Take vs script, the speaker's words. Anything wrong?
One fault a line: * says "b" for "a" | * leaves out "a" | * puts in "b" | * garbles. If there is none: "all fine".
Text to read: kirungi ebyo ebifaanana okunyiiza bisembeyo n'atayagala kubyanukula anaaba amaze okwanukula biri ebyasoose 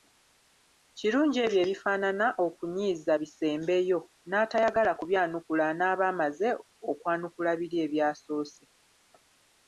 all fine